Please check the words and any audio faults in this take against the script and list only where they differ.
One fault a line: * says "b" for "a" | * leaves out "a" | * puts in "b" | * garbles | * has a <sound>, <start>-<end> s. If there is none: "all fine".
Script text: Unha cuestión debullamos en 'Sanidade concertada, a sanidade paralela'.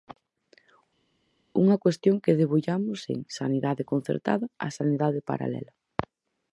* puts in "que"